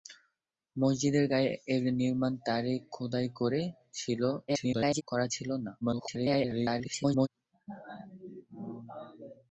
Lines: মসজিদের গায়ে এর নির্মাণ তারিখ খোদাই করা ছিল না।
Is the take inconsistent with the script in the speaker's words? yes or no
yes